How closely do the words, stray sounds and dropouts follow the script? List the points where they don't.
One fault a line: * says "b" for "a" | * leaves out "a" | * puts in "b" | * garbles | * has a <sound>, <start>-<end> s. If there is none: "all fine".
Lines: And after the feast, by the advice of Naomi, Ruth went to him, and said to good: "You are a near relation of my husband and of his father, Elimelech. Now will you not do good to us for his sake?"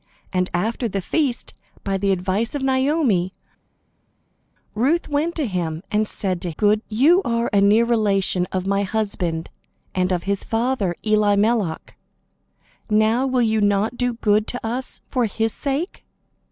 all fine